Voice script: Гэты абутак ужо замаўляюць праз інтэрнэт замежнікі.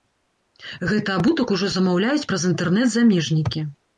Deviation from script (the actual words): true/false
false